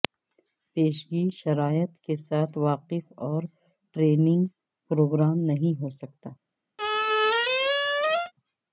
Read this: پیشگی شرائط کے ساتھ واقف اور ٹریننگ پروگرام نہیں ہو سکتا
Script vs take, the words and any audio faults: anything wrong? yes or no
yes